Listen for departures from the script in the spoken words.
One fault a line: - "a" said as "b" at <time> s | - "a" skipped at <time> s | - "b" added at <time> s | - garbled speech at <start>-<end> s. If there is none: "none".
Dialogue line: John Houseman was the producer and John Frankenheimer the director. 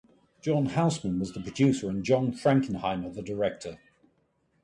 none